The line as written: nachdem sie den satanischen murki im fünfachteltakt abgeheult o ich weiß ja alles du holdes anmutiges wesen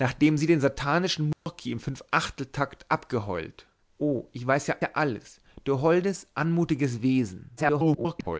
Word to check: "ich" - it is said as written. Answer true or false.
true